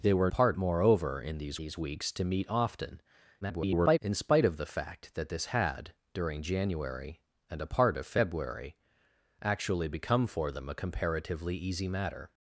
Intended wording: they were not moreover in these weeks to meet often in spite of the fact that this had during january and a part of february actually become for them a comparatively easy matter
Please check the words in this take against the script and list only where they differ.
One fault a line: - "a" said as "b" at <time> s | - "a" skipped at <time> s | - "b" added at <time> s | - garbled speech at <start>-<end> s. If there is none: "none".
- "not" said as "part" at 0.3 s
- "these" added at 1.6 s
- garbled speech at 3.4-4.0 s